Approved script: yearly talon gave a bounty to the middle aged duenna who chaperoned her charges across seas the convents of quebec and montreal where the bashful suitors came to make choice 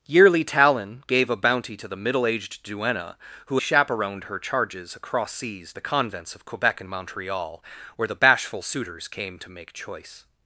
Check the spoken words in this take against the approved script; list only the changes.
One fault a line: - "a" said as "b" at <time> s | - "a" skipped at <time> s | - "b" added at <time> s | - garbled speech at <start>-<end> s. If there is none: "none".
none